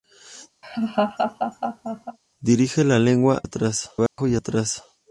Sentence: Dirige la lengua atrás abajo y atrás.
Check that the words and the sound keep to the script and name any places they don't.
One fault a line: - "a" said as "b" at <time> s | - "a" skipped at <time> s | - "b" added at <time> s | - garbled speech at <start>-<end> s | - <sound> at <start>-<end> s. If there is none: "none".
- laugh at 0.6-2.2 s
- dropout at 4.1-4.2 s